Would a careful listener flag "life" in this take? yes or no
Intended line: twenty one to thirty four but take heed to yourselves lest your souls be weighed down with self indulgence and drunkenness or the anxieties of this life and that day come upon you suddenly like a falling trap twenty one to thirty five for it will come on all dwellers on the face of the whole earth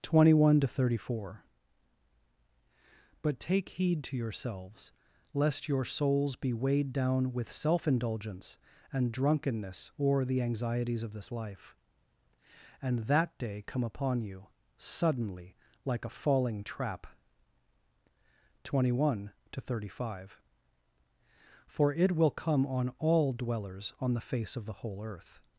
no